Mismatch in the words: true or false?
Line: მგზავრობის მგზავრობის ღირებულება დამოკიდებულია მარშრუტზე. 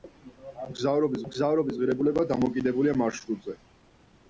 false